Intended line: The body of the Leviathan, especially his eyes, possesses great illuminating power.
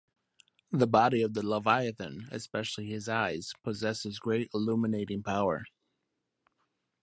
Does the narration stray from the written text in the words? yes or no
no